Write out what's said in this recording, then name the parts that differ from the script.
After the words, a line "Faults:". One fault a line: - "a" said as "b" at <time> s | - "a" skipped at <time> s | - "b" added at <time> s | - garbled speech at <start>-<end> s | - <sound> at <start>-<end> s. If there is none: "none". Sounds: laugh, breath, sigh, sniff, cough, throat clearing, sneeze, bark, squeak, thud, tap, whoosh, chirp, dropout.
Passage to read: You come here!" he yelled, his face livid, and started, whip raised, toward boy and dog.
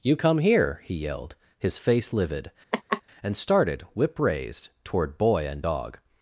You come here!" he yelled, his face livid, and started, whip raised, toward boy and dog.
Faults:
- laugh at 2.7-3.0 s